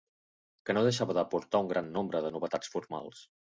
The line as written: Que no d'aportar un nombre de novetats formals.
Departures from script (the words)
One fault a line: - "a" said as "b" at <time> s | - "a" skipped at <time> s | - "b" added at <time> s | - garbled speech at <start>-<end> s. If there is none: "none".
- "deixava" added at 0.9 s
- "gran" added at 1.8 s